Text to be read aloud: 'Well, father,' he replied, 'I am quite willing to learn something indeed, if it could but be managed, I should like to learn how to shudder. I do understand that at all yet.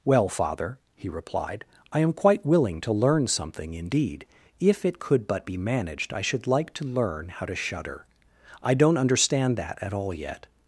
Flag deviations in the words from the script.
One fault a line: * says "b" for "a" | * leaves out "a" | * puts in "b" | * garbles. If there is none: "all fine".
* says "don't" for "do"